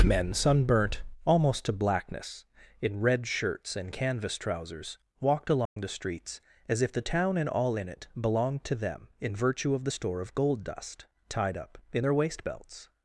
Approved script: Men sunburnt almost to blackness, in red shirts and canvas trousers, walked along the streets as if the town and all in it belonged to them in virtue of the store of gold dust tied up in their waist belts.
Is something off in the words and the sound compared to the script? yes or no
yes